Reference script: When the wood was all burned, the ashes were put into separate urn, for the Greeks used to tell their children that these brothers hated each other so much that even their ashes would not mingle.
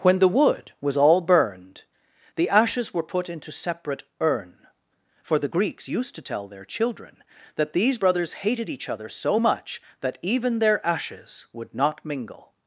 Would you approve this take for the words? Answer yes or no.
yes